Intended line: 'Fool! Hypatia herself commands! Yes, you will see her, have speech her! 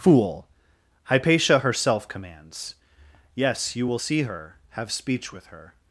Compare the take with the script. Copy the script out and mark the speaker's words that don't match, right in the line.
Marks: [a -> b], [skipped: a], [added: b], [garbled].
'Fool! Hypatia herself commands! Yes, you will see her, have speech [added: with] her!